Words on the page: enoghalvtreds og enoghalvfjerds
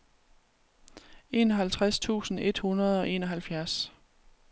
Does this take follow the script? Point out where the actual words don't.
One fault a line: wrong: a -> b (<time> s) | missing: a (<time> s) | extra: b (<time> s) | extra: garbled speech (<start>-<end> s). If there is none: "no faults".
extra: tusind et hundrede (2.0 s)